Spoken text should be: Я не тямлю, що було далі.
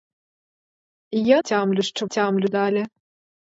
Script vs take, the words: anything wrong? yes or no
yes